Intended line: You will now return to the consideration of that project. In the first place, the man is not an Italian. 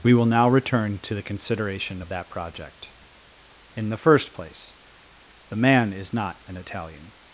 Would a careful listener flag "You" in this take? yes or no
yes